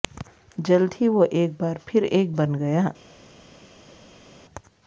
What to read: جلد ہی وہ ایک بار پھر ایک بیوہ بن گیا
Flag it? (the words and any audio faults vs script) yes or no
yes